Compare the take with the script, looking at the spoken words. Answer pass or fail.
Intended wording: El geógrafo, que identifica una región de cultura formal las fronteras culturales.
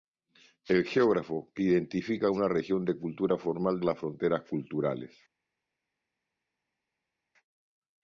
pass